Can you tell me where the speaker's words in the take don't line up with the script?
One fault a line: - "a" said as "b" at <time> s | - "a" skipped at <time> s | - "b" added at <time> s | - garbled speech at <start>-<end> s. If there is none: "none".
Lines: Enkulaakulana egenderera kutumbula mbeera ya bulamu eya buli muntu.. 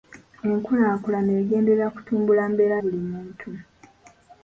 - "ya bulamu eya" skipped at 2.8 s